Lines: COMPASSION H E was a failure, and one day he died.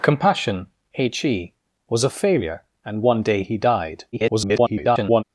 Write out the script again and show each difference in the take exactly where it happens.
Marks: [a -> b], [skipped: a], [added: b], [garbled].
COMPASSION H E was a failure, and one day he died. [garbled]